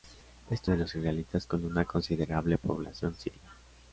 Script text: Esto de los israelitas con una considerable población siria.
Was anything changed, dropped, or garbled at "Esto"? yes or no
no